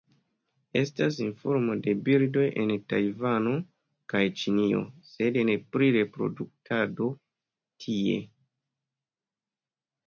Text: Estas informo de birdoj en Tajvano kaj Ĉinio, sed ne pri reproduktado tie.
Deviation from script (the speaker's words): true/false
false